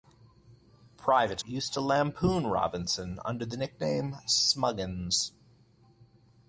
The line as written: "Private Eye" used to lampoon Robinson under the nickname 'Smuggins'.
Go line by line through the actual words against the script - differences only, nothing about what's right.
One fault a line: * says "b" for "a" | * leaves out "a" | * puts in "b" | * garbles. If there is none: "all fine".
* leaves out "Eye"